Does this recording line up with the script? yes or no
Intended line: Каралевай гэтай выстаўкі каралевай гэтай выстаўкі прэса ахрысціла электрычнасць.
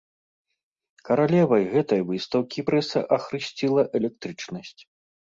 no